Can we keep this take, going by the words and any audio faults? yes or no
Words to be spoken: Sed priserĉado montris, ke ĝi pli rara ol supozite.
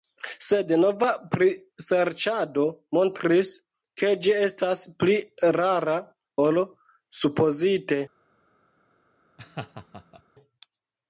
no